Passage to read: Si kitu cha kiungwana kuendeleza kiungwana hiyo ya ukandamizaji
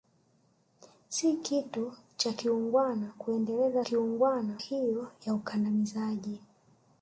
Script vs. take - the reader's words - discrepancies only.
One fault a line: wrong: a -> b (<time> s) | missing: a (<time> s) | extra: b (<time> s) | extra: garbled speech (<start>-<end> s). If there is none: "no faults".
no faults